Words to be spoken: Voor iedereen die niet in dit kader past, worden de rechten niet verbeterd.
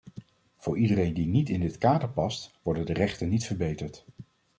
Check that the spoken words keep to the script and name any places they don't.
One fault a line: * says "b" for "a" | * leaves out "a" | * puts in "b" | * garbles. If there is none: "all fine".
all fine